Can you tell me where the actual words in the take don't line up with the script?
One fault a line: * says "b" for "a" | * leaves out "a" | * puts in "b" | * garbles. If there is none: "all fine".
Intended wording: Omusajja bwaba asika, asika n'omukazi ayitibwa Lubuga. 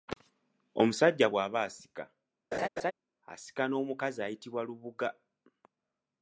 all fine